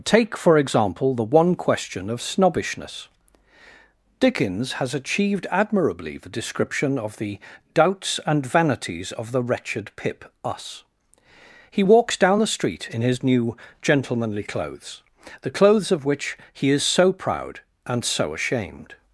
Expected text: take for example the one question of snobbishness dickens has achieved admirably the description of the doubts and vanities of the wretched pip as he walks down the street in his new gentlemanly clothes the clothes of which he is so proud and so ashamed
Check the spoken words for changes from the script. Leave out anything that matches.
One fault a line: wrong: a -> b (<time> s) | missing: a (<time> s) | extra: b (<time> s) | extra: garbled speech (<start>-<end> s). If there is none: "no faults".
wrong: as -> us (10.4 s)